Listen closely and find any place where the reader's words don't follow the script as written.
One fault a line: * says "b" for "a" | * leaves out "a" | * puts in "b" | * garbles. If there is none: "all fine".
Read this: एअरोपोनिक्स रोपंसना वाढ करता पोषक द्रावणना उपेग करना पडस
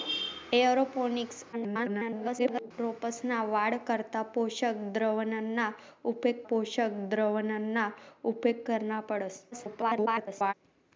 * garbles
* puts in "पोषक द्रावणना उपेग"
* garbles